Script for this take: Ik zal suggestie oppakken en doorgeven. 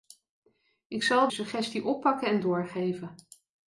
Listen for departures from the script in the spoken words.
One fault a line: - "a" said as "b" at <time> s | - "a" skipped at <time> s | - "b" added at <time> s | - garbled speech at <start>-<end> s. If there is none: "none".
none